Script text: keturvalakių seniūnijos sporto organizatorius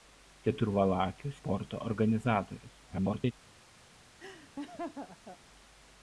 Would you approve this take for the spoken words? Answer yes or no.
no